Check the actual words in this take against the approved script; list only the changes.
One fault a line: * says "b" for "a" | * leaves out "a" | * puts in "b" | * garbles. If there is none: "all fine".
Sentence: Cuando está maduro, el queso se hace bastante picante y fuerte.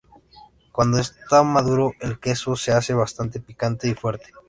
all fine